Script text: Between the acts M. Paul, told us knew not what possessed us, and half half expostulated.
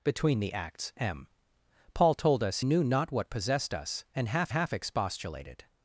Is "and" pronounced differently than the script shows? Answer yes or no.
no